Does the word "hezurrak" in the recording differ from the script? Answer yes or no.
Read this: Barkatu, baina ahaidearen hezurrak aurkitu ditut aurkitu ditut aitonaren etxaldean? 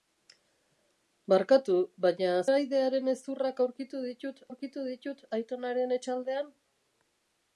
no